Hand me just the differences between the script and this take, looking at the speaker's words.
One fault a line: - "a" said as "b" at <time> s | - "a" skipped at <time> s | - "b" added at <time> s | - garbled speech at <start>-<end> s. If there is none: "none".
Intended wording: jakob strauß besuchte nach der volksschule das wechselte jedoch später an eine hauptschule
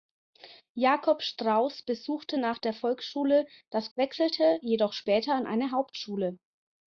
none